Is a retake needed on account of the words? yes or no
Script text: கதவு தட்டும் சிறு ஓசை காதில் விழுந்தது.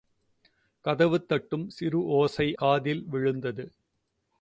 no